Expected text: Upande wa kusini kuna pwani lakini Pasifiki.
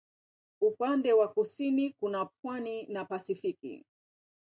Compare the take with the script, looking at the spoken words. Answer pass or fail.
fail